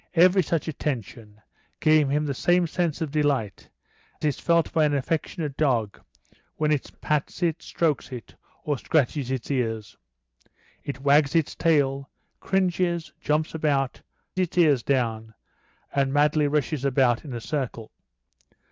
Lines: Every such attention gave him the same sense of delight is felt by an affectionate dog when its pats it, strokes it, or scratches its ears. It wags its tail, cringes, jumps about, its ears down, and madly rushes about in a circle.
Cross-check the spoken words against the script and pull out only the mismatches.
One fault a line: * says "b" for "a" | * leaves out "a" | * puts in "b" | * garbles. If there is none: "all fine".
all fine